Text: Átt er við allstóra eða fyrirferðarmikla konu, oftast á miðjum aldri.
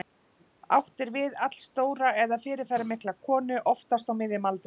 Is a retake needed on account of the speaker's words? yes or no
no